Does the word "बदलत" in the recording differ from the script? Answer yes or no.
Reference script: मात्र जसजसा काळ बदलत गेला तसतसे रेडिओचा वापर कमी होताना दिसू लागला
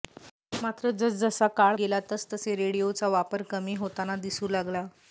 yes